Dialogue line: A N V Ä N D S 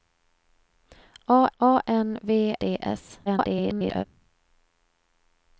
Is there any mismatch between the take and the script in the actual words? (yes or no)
yes